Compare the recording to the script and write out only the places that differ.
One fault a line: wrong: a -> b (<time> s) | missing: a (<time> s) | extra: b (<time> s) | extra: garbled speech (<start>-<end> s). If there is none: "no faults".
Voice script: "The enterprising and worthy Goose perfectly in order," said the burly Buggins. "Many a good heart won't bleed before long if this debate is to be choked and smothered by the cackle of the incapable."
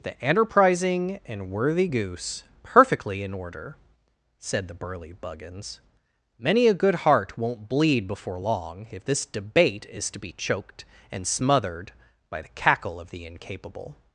no faults